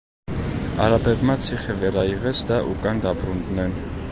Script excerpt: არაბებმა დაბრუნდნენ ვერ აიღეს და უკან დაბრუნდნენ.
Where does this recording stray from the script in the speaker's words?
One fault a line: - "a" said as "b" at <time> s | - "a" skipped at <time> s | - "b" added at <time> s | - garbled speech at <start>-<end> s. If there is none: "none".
- "დაბრუნდნენ" said as "ციხე" at 1.5 s